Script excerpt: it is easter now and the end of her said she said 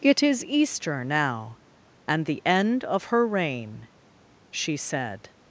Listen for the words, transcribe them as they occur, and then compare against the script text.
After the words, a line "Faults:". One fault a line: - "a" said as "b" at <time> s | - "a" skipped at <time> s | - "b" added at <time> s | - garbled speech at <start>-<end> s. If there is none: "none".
it is easter now and the end of her reign she said
Faults:
- "said" said as "reign" at 3.3 s